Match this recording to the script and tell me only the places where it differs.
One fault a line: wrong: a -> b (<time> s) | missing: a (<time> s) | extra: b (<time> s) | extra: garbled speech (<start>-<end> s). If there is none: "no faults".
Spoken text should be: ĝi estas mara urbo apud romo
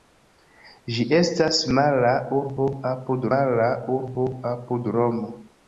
extra: mara urbo apud (3.3 s)